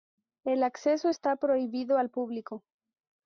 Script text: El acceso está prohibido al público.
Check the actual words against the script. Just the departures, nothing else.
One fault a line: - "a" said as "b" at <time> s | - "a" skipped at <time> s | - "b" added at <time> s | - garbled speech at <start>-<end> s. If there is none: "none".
none